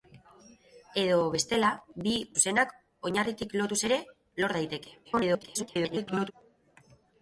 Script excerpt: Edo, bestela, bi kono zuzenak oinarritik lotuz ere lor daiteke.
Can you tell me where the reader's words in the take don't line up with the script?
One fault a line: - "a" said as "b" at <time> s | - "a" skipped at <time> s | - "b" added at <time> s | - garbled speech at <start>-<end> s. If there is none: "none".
- "kono" skipped at 2.1 s
- garbled speech at 5.0-6.3 s